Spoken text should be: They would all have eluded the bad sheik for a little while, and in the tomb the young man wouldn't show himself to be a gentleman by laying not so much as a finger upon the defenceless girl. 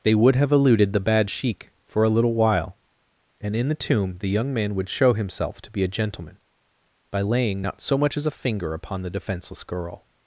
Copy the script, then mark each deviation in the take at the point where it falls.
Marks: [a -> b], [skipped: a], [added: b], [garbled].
They would [skipped: all] have eluded the bad sheik for a little while, and in the tomb the young man [wouldn't -> would] show himself to be a gentleman by laying not so much as a finger upon the defenceless girl.